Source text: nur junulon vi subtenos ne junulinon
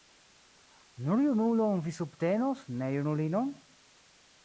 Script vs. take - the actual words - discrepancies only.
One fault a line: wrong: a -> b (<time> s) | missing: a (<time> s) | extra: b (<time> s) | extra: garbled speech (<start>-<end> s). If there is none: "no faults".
no faults